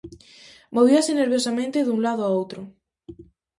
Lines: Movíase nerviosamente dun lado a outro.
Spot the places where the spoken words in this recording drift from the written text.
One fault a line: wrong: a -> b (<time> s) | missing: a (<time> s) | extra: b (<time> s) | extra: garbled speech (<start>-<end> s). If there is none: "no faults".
no faults